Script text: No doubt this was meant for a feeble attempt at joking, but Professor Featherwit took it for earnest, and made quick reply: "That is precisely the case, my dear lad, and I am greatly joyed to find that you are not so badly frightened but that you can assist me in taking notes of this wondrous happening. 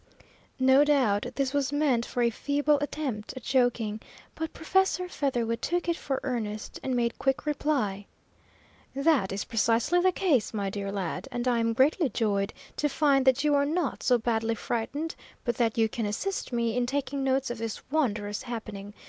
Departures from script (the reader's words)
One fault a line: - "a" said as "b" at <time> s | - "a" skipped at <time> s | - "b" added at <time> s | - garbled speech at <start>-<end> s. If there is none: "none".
none